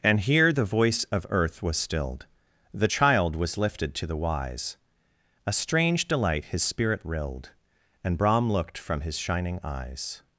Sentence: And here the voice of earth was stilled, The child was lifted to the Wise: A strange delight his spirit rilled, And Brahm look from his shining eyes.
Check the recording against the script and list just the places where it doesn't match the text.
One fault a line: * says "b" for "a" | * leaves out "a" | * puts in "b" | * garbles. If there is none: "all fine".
* says "looked" for "look"